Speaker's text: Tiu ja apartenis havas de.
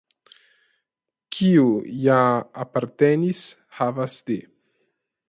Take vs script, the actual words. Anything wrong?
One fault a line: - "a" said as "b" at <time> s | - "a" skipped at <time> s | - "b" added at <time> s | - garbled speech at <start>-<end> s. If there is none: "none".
- "Tiu" said as "Kiu" at 1.4 s